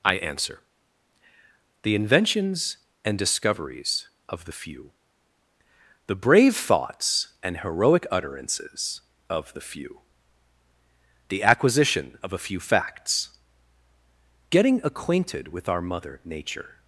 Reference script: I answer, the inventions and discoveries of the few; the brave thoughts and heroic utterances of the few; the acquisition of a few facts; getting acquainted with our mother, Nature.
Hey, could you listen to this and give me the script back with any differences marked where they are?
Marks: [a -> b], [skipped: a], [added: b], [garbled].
I answer, the inventions and discoveries of the few; the brave thoughts and heroic utterances of the few; the acquisition of a few facts; getting acquainted with our mother, Nature.